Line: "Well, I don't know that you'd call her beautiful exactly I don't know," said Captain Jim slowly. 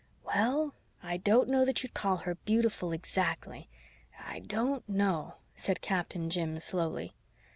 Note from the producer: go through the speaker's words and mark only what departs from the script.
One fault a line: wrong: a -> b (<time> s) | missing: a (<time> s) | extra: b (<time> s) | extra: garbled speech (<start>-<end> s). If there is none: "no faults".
no faults